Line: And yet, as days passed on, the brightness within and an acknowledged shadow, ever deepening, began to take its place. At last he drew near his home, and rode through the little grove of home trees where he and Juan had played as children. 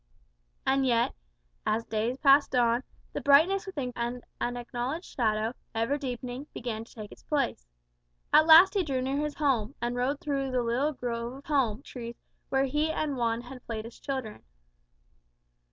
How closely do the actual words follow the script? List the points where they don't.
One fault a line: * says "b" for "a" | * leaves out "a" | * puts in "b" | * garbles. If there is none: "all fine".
all fine